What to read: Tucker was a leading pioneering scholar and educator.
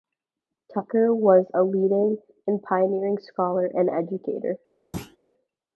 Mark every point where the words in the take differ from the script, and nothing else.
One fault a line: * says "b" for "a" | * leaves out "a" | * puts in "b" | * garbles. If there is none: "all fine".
* puts in "and"